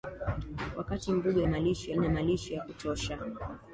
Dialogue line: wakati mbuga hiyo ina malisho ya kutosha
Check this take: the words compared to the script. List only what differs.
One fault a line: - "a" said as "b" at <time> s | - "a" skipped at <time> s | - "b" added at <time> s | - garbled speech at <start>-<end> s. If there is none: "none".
- "hiyo" said as "malisho" at 1.5 s